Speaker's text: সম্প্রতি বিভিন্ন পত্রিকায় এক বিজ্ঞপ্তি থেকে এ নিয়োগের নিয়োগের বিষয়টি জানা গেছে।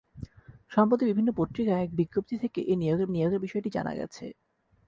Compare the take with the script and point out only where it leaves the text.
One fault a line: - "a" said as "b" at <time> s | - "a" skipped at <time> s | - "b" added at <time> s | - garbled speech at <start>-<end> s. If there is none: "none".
none